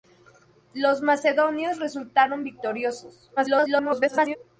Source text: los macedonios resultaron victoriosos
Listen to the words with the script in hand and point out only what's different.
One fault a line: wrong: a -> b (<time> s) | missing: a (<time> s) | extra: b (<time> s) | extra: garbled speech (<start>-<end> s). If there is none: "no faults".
extra: garbled speech (3.4-4.4 s)